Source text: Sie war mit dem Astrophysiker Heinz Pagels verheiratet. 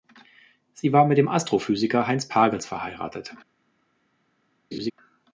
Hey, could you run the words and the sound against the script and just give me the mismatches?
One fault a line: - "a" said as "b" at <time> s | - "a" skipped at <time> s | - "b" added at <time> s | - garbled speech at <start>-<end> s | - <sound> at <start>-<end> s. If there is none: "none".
- laugh at 4.7-4.9 s